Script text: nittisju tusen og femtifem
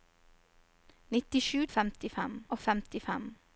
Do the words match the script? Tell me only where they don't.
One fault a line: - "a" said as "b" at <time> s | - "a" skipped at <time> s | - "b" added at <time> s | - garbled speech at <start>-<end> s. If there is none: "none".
- "tusen" said as "femtifem" at 1.7 s